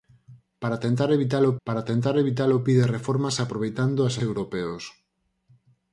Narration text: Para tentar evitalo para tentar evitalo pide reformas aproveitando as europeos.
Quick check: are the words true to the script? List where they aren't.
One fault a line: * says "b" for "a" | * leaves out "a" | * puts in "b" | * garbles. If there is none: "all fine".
all fine